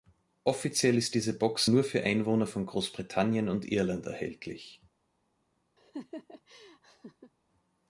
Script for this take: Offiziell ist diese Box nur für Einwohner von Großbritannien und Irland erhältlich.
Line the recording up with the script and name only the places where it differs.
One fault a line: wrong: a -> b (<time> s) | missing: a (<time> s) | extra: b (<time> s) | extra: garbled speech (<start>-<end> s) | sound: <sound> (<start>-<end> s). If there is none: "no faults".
sound: laugh (5.8-7.3 s)